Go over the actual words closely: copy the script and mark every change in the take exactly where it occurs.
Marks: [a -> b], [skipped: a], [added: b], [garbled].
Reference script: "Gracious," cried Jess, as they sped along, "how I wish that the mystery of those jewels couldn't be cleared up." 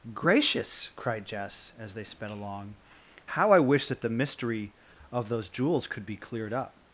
"Gracious," cried Jess, as they sped along, "how I wish that the mystery of those jewels [couldn't -> could] be cleared up."